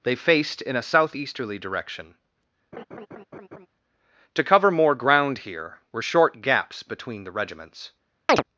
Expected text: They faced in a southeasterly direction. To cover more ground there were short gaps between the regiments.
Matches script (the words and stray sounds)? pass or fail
fail